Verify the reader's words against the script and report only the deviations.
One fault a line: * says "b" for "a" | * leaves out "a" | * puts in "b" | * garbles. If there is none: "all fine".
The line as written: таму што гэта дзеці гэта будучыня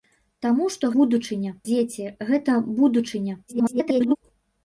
* says "будучыня" for "гэта"
* garbles